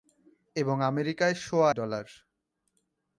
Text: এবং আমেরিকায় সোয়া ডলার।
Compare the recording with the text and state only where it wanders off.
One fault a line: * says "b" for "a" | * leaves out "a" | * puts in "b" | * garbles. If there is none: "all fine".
all fine